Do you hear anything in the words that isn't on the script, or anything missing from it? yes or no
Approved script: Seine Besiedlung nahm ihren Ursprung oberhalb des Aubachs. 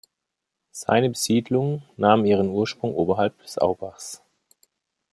no